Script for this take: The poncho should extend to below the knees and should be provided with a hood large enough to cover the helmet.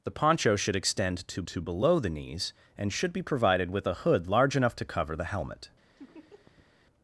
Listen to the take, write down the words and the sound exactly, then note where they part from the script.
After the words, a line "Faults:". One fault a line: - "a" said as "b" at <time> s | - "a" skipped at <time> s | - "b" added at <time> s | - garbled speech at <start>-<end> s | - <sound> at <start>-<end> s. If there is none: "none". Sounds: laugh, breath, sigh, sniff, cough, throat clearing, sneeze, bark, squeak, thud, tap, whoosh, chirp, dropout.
The poncho should extend to to below the knees and should be provided with a hood large enough to cover the helmet.
Faults:
- "to" added at 1.5 s
- laugh at 6.0-6.7 s